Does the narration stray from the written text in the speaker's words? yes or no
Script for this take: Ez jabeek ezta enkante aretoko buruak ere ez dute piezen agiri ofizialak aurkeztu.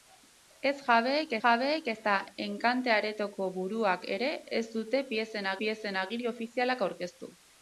yes